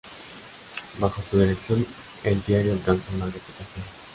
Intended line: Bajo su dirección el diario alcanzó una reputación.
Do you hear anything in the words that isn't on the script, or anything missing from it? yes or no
no